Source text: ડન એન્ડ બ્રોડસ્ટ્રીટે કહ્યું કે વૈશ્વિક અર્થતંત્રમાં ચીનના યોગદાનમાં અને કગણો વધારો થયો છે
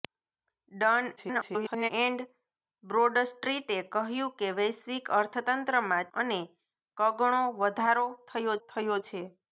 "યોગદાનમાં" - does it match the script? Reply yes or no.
no